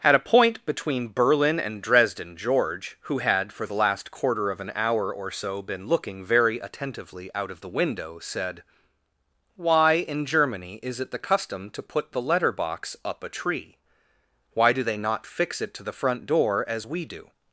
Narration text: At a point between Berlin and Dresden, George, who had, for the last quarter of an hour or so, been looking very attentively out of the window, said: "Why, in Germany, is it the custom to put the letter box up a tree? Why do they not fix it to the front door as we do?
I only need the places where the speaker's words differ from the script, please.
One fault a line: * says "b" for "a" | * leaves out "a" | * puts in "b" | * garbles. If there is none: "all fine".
all fine